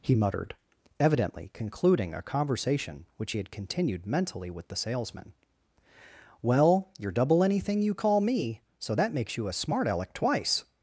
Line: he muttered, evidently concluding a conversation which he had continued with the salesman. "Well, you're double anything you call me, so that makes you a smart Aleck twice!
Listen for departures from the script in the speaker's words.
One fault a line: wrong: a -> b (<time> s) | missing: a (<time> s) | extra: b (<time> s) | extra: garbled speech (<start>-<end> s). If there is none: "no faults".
extra: mentally (4.1 s)